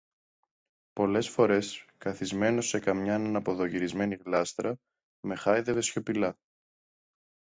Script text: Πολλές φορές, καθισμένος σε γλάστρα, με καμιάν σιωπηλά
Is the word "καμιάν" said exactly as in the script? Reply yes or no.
no